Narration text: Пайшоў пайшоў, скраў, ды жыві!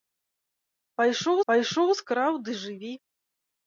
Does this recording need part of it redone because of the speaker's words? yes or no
no